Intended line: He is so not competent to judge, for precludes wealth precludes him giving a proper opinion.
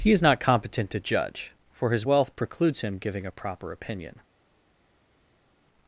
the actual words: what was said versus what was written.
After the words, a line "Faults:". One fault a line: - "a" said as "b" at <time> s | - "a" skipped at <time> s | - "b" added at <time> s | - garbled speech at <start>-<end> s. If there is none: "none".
He is not competent to judge, for his wealth precludes him giving a proper opinion.
Faults:
- "so" skipped at 0.2 s
- "precludes" said as "his" at 1.9 s